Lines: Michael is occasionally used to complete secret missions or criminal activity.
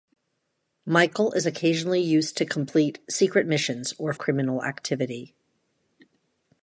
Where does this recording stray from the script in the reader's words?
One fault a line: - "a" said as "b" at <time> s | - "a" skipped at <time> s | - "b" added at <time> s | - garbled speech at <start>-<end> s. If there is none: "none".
none